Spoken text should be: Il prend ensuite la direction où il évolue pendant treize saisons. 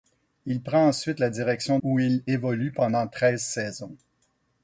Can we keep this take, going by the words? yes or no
yes